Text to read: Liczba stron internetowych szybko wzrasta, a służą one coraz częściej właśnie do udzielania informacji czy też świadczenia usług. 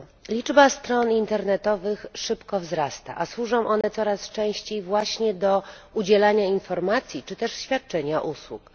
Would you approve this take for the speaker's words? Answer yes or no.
yes